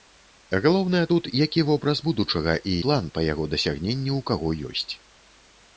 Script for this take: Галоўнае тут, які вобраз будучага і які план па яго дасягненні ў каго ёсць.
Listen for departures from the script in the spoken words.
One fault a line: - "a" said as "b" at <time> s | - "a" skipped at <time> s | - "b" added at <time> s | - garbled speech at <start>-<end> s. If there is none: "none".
- "які" skipped at 2.7 s